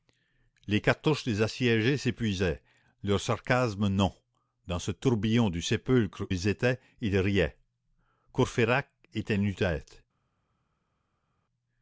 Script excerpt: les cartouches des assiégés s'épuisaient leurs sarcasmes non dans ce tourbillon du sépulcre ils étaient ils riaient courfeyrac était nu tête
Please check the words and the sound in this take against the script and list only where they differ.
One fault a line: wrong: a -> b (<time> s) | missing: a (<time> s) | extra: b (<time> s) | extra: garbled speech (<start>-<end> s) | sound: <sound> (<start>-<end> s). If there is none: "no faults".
no faults